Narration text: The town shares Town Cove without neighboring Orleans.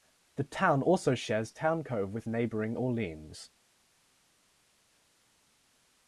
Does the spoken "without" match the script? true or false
false